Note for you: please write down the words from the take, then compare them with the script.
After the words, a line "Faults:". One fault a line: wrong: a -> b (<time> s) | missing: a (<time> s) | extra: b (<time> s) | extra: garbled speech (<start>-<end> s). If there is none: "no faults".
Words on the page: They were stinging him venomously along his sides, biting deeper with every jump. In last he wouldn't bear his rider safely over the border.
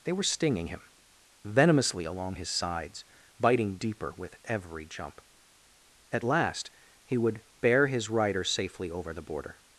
They were stinging him venomously along his sides, biting deeper with every jump. At last he would bear his rider safely over the border.
Faults:
wrong: In -> At (6.1 s)
wrong: wouldn't -> would (7.2 s)